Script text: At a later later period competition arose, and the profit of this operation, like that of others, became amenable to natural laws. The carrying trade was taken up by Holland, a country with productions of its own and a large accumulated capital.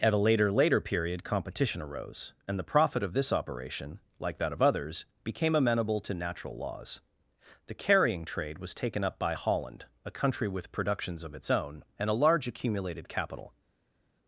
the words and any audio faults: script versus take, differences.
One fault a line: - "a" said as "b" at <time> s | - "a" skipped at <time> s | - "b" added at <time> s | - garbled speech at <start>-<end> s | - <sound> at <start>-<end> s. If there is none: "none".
none